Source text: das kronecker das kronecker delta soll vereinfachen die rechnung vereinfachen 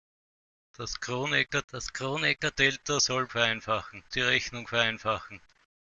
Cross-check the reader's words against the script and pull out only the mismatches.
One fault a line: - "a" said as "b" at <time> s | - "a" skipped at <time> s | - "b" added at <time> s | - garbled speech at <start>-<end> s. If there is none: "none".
none